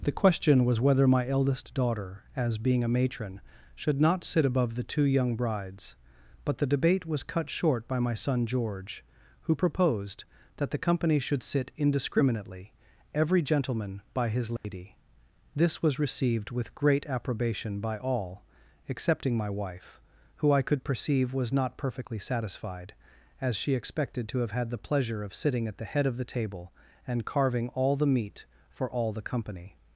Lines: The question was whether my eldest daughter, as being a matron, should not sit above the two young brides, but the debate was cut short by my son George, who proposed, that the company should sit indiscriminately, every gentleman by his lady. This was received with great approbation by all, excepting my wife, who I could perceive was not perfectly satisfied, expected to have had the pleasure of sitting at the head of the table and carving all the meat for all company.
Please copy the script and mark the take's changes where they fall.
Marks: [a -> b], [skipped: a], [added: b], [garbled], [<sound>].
The question was whether my eldest daughter, as being a matron, should not sit above the two young brides, but the debate was cut short by my son George, who proposed, that the company should sit indiscriminately, every gentleman by his lady. [dropout] This was received with great approbation by all, excepting my wife, who I could perceive was not perfectly satisfied, [added: as she] expected to have had the pleasure of sitting at the head of the table and carving all the meat for all [added: the] company.